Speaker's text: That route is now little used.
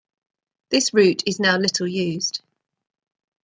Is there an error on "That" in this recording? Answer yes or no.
yes